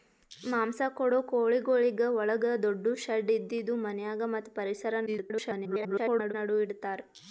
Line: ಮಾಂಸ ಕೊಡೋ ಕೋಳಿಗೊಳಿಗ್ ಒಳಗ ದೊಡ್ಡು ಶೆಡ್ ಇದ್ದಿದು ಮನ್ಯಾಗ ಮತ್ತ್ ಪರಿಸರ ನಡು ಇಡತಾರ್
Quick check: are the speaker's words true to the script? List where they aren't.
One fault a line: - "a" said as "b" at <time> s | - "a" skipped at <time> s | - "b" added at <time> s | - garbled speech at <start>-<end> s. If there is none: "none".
- garbled speech at 5.1-6.3 s